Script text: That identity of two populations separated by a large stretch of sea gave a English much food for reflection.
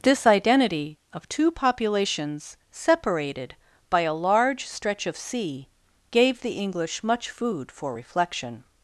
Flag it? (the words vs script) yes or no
yes